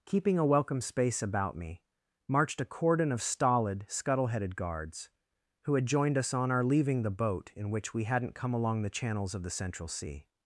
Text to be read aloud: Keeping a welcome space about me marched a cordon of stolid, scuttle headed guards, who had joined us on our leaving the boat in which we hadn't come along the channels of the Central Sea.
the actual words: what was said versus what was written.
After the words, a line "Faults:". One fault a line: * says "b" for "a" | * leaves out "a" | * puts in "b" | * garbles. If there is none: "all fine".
Keeping a welcome space about me marched a cordon of stolid, scuttle headed guards, who had joined us on our leaving the boat in which we hadn't come along the channels of the Central Sea.
Faults:
all fine